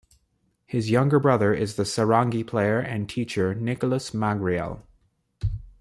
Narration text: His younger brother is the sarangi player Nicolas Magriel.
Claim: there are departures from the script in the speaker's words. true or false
true